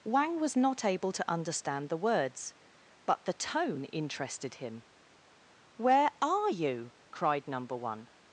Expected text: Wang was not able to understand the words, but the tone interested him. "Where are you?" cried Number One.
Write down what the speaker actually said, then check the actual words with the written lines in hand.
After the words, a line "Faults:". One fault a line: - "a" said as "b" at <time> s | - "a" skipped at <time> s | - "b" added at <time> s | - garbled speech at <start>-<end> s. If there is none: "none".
Wang was not able to understand the words, but the tone interested him. "Where are you?" cried Number One.
Faults:
none